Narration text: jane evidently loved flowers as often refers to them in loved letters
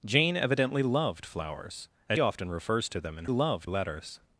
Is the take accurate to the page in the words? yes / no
yes